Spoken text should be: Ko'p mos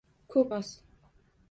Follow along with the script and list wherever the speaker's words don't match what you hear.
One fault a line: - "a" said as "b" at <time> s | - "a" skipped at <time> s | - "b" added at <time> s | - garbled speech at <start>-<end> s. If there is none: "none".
none